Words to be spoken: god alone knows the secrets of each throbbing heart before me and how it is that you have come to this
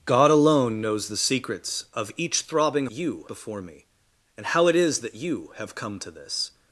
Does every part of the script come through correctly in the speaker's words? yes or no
no